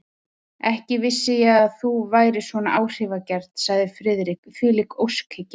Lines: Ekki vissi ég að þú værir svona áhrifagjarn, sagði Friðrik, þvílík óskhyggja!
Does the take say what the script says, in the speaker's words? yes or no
yes